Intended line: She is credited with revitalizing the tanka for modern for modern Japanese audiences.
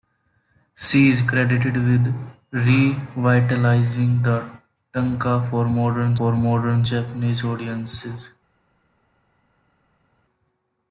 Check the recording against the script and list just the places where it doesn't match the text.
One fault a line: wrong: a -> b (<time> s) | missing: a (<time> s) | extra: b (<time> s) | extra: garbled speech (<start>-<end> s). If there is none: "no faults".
no faults